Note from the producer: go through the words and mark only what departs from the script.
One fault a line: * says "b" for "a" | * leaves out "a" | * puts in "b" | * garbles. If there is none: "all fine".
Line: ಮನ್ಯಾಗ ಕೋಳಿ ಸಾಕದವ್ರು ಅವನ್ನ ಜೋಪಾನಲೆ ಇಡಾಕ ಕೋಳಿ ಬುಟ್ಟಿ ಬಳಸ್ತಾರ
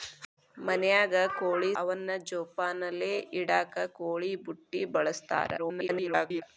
* leaves out "ಸಾಕದವ್ರು"
* garbles